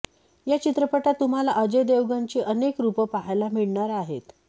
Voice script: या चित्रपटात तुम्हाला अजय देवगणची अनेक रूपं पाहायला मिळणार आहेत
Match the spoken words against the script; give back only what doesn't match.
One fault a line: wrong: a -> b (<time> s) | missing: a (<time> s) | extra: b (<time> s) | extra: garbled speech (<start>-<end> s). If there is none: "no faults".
no faults